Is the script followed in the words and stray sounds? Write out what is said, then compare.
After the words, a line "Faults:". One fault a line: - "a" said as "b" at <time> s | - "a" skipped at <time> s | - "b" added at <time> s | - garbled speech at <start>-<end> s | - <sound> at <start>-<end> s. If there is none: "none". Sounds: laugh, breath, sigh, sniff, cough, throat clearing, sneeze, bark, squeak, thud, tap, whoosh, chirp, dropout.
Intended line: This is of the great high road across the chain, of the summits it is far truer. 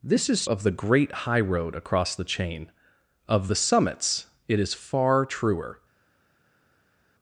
This is of the great high road across the chain, of the summits it is far truer.
Faults:
none